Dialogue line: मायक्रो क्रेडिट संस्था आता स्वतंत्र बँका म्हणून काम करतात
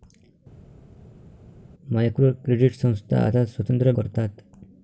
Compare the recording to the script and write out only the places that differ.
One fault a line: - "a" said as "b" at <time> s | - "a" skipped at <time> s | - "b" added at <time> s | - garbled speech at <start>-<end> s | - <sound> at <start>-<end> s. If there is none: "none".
- "बँका म्हणून काम" skipped at 3.9 s